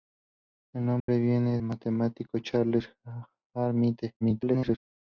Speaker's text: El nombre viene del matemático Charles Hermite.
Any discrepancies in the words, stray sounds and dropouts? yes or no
yes